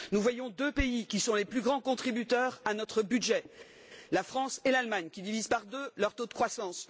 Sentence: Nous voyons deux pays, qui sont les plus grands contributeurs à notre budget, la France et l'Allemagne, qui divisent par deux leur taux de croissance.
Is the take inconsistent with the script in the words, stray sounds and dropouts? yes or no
no